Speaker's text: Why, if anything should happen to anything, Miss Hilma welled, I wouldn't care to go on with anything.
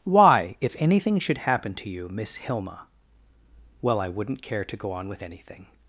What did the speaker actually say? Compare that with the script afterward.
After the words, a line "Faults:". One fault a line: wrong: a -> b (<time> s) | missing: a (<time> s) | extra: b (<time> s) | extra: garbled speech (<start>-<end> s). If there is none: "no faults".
Why, if anything should happen to you, Miss Hilma well, I wouldn't care to go on with anything.
Faults:
wrong: anything -> you (1.9 s)
wrong: welled -> well (3.8 s)